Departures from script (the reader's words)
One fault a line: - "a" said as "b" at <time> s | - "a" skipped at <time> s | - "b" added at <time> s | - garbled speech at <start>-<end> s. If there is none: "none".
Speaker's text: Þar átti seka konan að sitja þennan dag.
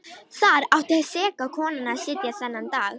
none